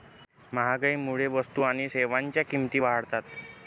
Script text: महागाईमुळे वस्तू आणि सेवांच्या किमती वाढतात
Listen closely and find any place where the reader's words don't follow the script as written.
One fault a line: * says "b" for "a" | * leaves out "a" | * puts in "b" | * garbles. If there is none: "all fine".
all fine